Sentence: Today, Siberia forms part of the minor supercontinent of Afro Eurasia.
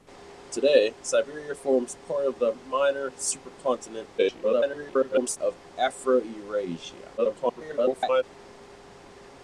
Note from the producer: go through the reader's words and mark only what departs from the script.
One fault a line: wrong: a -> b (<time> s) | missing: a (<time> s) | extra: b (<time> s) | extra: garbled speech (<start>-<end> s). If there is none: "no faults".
extra: garbled speech (4.2-5.4 s)
extra: garbled speech (7.2-8.2 s)